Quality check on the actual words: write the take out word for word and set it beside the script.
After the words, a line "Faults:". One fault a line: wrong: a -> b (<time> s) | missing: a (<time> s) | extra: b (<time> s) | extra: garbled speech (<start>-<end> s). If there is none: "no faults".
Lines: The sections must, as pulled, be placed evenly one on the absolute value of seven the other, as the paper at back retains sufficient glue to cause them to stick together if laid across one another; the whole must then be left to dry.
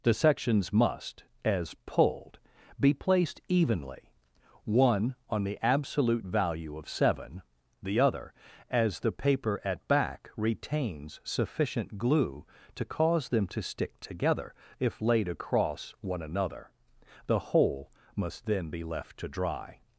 The sections must, as pulled, be placed evenly one on the absolute value of seven the other, as the paper at back retains sufficient glue to cause them to stick together if laid across one another; the whole must then be left to dry.
Faults:
no faults